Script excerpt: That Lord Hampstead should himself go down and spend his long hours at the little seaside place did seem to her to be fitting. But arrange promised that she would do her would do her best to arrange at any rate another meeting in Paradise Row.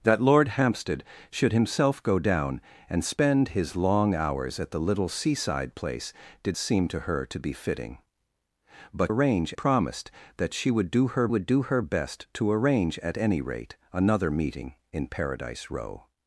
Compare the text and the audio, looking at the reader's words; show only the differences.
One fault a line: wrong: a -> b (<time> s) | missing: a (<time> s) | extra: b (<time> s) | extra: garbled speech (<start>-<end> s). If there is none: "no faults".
no faults